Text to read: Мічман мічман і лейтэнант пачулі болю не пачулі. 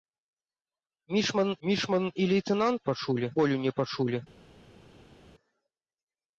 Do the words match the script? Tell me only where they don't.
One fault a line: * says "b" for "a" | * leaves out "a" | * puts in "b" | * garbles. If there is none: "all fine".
all fine